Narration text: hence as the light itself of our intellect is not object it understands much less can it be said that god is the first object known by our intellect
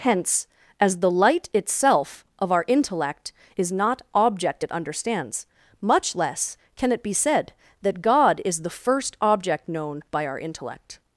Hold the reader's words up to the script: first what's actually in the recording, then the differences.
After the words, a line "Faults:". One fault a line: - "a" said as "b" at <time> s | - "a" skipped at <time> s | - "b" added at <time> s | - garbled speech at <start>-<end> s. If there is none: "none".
hence as the light itself of our intellect is not object it understands much less can it be said that god is the first object known by our intellect
Faults:
none